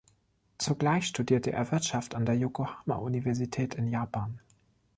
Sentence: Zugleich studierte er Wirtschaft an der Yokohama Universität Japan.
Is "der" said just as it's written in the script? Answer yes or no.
yes